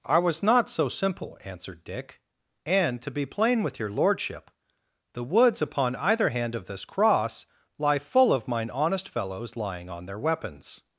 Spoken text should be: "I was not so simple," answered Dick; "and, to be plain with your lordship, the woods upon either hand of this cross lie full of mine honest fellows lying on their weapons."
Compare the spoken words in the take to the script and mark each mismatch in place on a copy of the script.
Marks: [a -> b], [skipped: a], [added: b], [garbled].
"I was not so simple," answered Dick; "and, to be plain with your lordship, the woods upon either hand of this cross lie full of mine honest fellows lying on their weapons."